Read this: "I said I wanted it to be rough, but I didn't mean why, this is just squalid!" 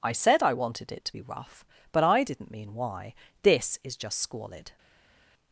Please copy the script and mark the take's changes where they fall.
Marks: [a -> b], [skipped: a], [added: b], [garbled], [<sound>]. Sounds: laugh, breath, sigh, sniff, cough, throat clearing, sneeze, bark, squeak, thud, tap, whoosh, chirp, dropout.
"I said I wanted it to be rough, but I didn't mean why, this is just squalid!"